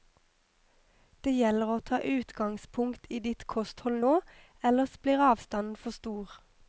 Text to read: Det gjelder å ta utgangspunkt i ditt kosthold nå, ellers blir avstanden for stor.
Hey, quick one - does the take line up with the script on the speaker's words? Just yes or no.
yes